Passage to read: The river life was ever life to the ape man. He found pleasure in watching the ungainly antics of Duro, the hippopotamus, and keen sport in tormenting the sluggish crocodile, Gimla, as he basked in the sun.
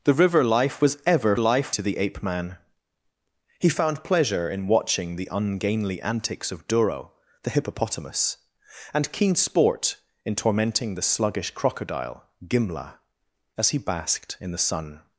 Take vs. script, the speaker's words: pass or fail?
pass